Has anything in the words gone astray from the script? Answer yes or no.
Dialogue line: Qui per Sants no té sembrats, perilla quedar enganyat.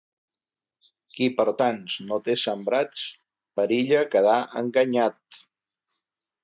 no